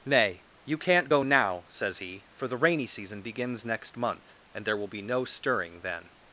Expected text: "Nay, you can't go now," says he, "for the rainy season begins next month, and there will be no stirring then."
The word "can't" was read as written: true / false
true